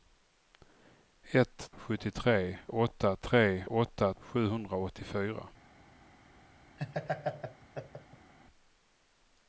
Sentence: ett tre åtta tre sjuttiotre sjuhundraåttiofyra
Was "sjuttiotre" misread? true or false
true